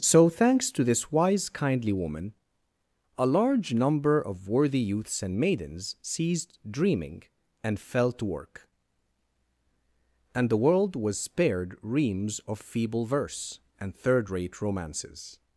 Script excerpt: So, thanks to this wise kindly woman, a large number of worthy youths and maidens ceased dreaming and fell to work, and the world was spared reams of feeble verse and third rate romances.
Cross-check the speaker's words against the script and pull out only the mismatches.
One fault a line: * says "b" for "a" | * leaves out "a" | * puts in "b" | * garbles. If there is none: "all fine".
all fine